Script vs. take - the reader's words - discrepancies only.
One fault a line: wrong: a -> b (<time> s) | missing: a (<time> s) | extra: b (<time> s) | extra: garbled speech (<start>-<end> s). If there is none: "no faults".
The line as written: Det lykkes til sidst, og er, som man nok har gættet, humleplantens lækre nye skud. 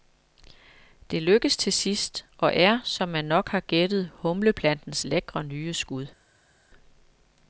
no faults